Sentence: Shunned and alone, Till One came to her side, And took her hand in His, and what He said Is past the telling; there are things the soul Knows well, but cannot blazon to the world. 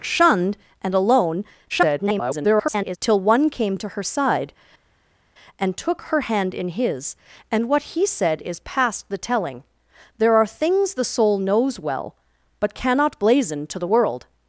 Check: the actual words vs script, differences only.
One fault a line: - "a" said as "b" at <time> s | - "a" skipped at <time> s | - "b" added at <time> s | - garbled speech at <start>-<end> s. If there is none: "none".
- garbled speech at 1.7-3.0 s